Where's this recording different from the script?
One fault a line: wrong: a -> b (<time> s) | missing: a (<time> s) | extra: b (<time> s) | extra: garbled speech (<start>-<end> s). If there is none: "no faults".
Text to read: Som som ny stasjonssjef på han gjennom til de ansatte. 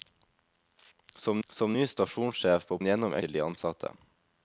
no faults